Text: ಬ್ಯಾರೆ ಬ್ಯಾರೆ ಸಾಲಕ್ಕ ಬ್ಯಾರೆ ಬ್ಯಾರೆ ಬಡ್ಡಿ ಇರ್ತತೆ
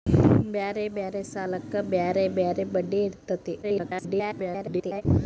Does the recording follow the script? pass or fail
fail